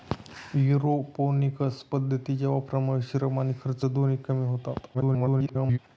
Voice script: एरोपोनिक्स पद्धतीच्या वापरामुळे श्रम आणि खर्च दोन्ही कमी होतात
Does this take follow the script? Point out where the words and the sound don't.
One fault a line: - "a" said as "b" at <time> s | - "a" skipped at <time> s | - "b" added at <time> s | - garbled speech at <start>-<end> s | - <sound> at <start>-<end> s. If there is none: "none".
- garbled speech at 4.9-5.8 s